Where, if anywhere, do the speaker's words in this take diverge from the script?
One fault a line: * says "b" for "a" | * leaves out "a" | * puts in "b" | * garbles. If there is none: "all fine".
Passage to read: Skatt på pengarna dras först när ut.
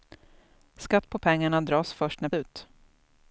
all fine